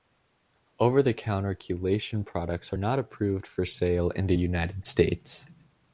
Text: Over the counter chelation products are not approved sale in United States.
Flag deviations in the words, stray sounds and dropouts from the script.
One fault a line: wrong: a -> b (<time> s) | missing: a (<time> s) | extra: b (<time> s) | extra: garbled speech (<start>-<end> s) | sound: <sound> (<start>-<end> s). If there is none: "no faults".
extra: for (3.5 s)
extra: the (4.3 s)